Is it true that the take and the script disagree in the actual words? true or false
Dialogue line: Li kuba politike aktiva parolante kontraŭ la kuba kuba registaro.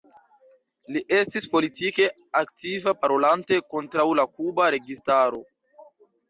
true